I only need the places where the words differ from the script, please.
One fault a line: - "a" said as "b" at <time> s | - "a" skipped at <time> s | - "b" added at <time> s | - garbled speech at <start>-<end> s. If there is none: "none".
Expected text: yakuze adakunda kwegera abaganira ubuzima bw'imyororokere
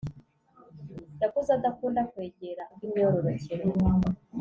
- "abaganira ubuzima" skipped at 2.6 s